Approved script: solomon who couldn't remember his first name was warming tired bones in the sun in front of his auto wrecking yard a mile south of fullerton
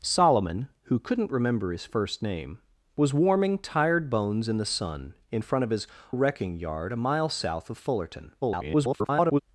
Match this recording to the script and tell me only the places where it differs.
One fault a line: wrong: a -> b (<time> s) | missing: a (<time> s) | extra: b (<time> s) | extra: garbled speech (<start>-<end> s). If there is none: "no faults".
missing: auto (5.8 s)
extra: garbled speech (8.4-9.4 s)